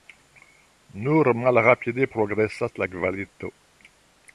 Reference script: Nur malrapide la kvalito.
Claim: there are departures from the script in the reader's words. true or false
true